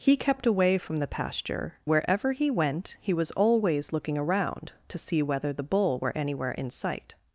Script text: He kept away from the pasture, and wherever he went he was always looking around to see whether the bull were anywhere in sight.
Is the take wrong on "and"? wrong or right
wrong